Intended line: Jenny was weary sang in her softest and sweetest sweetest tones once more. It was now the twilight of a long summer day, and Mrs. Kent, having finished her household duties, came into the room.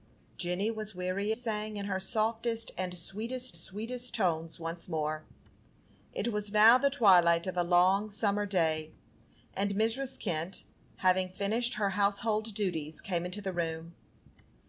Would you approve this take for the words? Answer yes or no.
yes